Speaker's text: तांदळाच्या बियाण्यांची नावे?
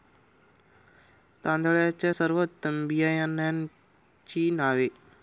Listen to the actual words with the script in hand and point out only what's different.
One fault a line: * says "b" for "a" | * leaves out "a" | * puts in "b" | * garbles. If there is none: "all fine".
* puts in "सर्वोत्तम"